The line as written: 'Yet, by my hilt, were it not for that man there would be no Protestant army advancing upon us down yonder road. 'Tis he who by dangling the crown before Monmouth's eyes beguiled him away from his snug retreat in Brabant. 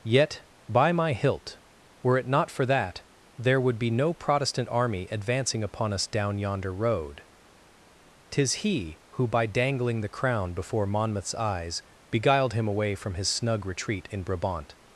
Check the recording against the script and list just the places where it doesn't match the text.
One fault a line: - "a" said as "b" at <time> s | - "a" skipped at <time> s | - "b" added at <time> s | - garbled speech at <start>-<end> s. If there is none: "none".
- "man" skipped at 3.0 s